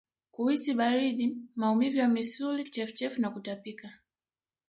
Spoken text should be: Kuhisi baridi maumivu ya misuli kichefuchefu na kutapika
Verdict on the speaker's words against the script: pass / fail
pass